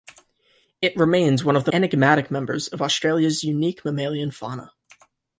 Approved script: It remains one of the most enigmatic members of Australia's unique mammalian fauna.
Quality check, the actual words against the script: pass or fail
fail